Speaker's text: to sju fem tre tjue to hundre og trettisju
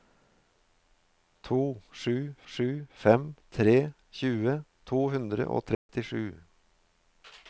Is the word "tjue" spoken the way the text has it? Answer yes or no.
yes